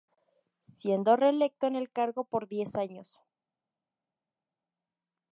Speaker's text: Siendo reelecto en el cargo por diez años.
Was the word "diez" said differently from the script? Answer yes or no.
no